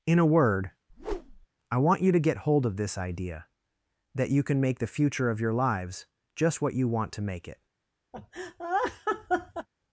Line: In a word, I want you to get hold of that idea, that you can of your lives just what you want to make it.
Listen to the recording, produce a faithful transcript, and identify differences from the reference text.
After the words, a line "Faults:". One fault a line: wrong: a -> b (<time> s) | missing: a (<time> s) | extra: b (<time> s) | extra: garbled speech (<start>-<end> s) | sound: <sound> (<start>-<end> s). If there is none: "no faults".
In a word, I want you to get hold of this idea, that you can make the future of your lives just what you want to make it.
Faults:
sound: whoosh (0.9-1.5 s)
wrong: that -> this (2.8 s)
extra: make the future (4.6 s)
sound: laugh (8.1-9.7 s)